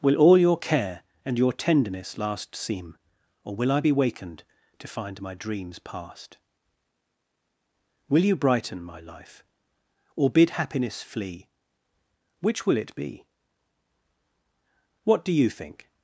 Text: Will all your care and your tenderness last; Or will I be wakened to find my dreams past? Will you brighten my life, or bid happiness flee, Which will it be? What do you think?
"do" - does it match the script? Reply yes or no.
yes